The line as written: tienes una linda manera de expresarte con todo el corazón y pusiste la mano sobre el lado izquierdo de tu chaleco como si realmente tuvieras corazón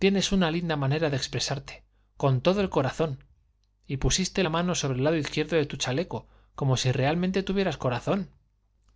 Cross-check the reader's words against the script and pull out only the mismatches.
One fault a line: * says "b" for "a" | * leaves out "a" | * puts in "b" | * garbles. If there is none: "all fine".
all fine